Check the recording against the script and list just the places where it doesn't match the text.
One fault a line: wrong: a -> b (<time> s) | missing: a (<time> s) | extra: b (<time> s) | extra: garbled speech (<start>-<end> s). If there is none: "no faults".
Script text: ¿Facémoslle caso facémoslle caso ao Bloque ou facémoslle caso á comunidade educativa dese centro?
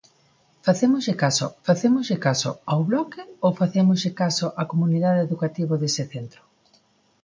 no faults